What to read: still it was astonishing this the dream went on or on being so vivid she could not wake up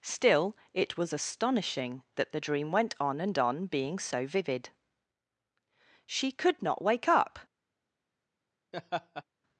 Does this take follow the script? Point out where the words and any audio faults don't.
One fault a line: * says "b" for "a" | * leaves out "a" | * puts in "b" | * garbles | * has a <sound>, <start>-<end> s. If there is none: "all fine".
* says "that" for "this"
* says "and" for "or"
* has a laugh, 8.7-9.2 s